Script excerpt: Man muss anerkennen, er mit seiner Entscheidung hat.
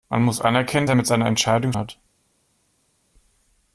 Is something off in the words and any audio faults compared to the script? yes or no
no